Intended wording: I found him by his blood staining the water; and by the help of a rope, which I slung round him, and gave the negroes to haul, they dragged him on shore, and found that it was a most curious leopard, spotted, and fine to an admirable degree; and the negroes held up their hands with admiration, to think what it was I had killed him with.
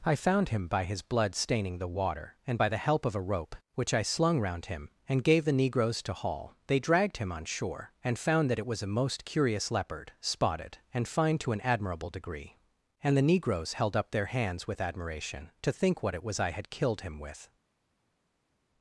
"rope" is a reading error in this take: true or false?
false